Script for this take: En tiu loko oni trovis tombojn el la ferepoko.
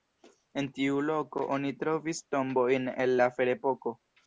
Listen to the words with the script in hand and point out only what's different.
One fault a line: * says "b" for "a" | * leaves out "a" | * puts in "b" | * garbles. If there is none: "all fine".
all fine